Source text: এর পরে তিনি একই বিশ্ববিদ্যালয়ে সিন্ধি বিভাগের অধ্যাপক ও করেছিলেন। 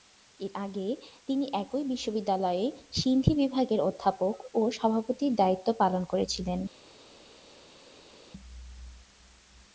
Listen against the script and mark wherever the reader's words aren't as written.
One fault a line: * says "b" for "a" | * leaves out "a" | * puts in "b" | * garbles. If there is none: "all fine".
* says "আগে" for "পরে"
* puts in "সভাপতির দায়িত্ব পালন"